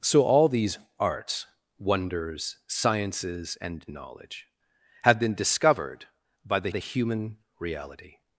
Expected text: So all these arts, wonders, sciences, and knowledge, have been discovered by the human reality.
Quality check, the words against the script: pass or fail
fail